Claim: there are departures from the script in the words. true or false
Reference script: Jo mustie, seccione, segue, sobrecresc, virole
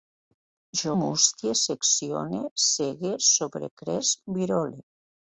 false